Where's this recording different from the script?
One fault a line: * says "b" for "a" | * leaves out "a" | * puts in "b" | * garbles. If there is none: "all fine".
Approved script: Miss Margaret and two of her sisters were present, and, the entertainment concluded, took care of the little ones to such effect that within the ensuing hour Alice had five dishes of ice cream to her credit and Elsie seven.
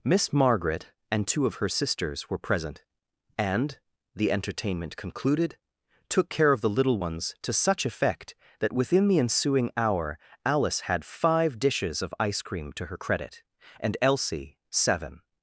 all fine